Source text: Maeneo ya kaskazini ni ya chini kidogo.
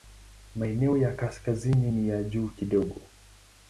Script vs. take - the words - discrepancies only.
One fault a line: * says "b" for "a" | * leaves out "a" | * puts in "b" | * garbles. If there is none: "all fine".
* says "juu" for "chini"